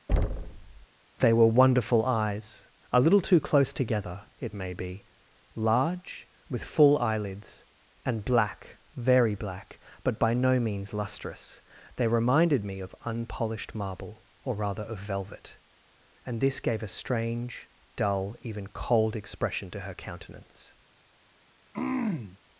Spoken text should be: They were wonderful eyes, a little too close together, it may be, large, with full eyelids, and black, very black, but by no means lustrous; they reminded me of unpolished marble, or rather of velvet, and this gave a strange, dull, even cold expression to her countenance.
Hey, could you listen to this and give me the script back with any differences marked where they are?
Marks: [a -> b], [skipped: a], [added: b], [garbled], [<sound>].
[thud] They were wonderful eyes, a little too close together, it may be, large, with full eyelids, and black, very black, but by no means lustrous; they reminded me of unpolished marble, or rather of velvet, and this gave a strange, dull, even cold expression to her countenance. [throat clearing]